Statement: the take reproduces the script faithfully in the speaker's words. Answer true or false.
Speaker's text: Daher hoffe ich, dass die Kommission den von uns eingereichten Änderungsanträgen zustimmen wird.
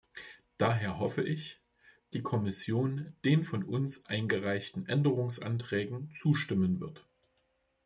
false